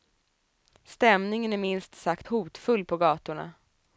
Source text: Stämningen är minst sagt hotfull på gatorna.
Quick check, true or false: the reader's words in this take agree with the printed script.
true